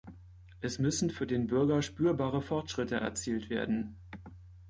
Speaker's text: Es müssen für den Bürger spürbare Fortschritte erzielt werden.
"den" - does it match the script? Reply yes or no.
yes